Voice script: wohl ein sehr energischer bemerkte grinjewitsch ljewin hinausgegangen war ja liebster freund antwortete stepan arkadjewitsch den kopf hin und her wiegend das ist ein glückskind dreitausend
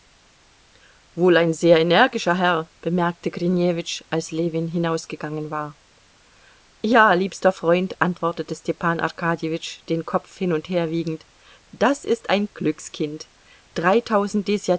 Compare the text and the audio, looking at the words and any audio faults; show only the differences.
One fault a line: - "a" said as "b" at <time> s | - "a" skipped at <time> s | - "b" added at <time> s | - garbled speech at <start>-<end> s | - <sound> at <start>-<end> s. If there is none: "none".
- "herr" added at 2.4 s
- "als" added at 4.1 s